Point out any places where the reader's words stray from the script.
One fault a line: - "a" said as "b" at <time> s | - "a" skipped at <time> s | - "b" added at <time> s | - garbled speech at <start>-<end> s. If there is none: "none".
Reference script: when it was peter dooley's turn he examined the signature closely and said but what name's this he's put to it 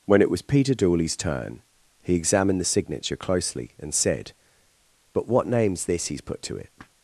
none